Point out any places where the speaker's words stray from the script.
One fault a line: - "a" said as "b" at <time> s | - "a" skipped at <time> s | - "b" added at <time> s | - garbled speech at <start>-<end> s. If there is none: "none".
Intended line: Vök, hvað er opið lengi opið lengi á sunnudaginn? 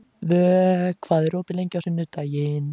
- "opið lengi" skipped at 1.8 s